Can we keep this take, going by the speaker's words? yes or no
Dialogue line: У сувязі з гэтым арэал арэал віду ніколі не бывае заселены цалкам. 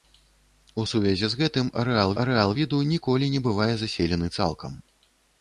yes